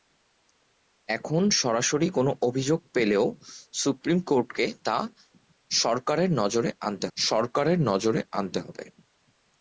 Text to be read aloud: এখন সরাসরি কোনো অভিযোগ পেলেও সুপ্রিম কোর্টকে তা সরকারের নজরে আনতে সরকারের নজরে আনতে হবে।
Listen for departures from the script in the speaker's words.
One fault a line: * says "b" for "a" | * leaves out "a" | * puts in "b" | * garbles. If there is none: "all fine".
all fine